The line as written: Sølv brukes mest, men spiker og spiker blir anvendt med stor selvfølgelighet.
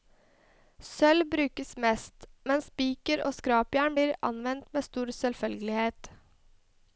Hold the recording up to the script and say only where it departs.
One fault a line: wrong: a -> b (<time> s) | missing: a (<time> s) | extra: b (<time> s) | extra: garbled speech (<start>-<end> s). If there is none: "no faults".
wrong: spiker -> skrapjern (3.4 s)